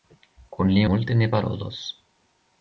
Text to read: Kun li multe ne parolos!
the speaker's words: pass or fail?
pass